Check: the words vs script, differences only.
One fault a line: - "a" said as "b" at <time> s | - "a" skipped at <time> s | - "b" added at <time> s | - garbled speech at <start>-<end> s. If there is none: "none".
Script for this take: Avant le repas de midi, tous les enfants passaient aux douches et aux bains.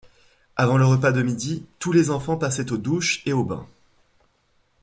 none